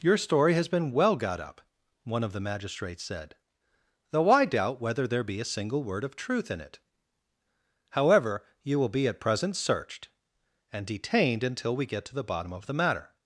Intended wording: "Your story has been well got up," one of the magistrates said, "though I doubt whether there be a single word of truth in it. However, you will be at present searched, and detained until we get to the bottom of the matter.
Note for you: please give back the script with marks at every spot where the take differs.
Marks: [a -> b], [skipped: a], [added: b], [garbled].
"Your story has been well got up," one of the magistrates said, "though I doubt whether there be a single word of truth in it. However, you will be at present searched, and detained until we get to the bottom of the matter.